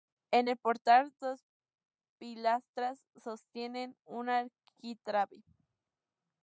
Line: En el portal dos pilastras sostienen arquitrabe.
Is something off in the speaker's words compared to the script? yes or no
yes